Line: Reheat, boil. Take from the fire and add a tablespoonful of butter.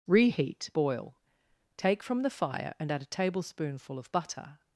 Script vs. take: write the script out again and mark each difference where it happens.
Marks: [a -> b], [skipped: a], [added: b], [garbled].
Reheat, boil. Take from the fire and add a tablespoonful of butter.